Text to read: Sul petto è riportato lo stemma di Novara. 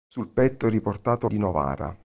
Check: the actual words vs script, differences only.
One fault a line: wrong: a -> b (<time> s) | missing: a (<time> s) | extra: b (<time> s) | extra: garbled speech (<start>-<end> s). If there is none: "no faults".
missing: lo stemma (1.3 s)